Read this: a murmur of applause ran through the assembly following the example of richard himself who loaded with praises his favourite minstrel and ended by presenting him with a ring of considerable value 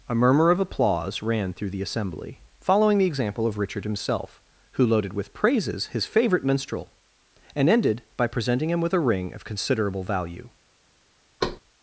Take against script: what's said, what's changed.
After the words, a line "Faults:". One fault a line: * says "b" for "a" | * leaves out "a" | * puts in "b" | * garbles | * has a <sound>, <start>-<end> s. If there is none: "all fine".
a murmur of applause ran through the assembly following the example of richard himself who loaded with praises his favourite minstrel and ended by presenting him with a ring of considerable value
Faults:
* has a thud, 11.4-11.6 s